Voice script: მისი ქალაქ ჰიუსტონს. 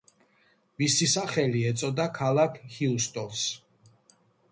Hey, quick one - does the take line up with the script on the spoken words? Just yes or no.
no